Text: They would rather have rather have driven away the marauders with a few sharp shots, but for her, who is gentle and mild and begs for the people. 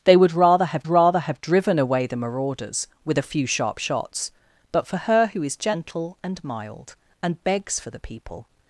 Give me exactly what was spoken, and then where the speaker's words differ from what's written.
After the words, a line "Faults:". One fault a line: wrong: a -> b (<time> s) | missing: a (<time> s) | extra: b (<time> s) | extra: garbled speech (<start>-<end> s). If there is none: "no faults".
They would rather have rather have driven away the marauders with a few sharp shots, but for her, who is gentle and mild and begs for the people.
Faults:
no faults